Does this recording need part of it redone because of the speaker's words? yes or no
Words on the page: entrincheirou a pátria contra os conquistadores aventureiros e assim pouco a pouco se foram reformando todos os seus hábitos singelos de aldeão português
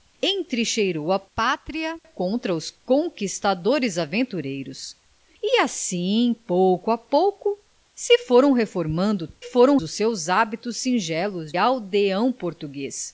yes